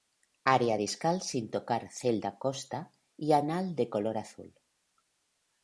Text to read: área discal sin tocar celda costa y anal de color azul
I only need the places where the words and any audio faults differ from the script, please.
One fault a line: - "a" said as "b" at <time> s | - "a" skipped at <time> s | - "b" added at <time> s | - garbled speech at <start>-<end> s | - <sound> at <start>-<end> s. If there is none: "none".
none